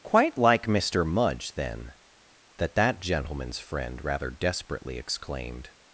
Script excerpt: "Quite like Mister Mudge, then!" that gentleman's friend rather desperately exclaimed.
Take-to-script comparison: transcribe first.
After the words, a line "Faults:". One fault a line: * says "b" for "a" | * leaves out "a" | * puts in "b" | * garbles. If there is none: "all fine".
"Quite like Mister Mudge, then!" that that gentleman's friend rather desperately exclaimed.
Faults:
* puts in "that"